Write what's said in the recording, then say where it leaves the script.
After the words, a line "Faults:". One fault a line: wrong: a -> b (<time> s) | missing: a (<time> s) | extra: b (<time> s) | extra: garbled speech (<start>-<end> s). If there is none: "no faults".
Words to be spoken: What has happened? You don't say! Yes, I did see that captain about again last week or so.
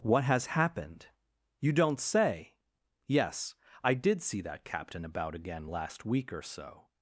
What has happened? You don't say! Yes, I did see that captain about again last week or so.
Faults:
no faults